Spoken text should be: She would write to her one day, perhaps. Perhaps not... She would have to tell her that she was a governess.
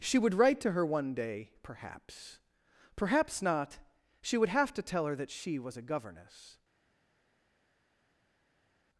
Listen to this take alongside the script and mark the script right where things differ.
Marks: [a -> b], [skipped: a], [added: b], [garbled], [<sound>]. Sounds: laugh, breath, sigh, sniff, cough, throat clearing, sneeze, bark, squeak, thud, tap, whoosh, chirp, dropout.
She would write to her one day, perhaps. Perhaps not... She would have to tell her that she was a governess.